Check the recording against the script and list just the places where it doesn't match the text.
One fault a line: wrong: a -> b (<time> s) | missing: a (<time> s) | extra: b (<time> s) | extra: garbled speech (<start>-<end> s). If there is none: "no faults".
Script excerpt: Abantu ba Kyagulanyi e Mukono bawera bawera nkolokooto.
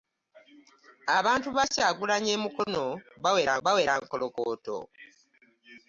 no faults